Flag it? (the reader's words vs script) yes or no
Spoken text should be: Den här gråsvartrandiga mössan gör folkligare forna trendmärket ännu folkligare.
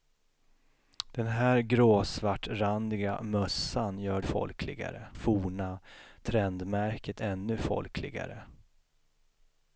no